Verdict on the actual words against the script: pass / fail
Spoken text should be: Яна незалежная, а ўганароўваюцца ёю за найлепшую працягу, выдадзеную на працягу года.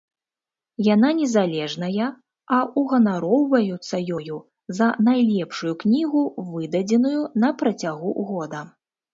fail